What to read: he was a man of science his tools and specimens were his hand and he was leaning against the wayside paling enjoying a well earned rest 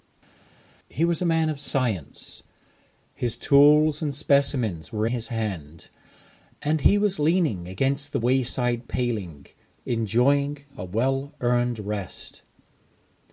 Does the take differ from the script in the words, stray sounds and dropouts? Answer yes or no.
no